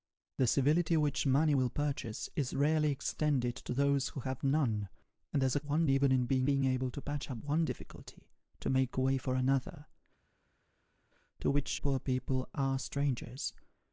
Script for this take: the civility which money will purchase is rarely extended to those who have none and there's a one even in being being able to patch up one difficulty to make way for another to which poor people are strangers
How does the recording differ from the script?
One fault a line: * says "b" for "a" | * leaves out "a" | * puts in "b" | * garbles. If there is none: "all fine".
all fine